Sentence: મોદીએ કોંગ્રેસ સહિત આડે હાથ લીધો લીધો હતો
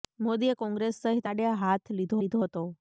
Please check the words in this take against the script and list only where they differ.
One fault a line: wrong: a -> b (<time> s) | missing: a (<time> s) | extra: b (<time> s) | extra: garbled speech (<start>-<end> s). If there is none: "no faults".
no faults